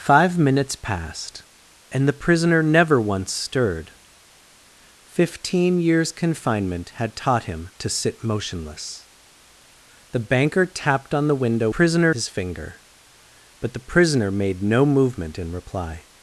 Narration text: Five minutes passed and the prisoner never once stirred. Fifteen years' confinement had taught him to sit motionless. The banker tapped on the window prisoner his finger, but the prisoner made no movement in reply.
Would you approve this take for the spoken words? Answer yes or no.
yes